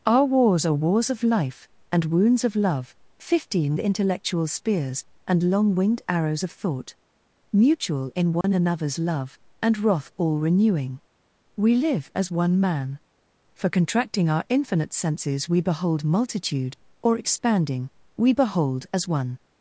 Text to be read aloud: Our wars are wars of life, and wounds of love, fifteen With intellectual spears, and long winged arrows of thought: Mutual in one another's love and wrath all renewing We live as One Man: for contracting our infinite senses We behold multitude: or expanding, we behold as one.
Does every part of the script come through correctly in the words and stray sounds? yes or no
no